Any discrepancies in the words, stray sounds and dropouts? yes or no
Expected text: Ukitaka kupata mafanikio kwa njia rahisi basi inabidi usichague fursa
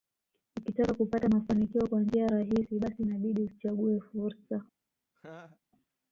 yes